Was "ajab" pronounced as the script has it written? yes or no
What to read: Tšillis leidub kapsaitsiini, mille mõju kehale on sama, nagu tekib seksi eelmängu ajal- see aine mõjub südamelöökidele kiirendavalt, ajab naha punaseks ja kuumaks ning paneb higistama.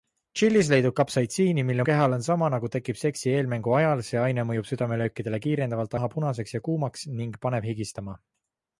no